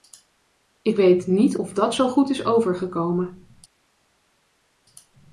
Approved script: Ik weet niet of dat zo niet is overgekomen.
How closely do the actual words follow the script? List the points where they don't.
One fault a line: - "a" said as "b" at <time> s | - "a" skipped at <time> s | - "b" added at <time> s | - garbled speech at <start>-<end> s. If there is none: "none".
- "niet" said as "goed" at 2.1 s